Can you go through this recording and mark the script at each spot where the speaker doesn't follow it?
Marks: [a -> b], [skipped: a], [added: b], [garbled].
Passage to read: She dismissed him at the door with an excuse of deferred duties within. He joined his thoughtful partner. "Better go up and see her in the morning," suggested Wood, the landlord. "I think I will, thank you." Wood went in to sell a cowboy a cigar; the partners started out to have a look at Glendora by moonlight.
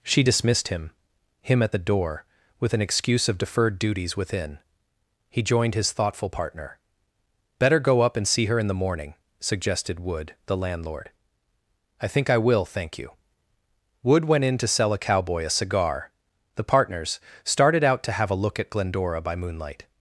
She dismissed him [added: him] at the door with an excuse of deferred duties within. He joined his thoughtful partner. "Better go up and see her in the morning," suggested Wood, the landlord. "I think I will, thank you." Wood went in to sell a cowboy a cigar; the partners started out to have a look at Glendora by moonlight.